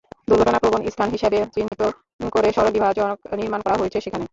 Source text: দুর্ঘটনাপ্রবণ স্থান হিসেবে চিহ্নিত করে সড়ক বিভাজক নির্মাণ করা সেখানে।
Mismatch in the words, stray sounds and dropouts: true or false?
true